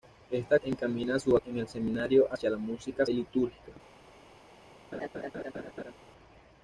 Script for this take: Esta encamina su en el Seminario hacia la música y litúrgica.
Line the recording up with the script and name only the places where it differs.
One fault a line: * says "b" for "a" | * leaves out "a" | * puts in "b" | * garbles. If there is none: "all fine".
all fine